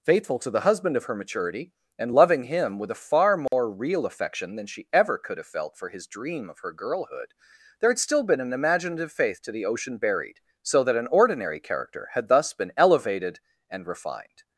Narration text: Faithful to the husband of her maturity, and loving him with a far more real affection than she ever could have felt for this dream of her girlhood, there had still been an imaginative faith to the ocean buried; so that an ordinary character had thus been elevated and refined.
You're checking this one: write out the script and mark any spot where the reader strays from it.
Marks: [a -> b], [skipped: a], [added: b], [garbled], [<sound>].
Faithful to the husband of her maturity, and loving him with a far more [dropout] real affection than she ever could have felt for [this -> his] dream of her girlhood, there had still been an imaginative faith to the ocean buried; so that an ordinary character had thus been elevated and refined.